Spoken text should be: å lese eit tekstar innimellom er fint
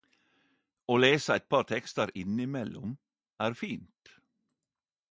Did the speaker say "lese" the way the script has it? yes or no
yes